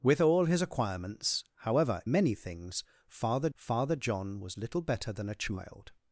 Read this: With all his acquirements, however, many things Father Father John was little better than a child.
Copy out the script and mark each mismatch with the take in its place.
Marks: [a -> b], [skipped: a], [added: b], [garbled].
With all his acquirements, however, many things Father Father John was little better than a child.